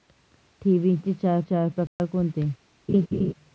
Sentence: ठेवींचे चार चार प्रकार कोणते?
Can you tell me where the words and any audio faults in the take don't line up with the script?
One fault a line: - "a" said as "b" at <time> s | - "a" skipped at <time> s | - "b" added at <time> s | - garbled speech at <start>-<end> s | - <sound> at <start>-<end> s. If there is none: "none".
- dropout at 1.9-2.0 s
- laugh at 2.9-3.3 s